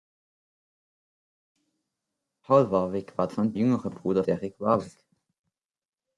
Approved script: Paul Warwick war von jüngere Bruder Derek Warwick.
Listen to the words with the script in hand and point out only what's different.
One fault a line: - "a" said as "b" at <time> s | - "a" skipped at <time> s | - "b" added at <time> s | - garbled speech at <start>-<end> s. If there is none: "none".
none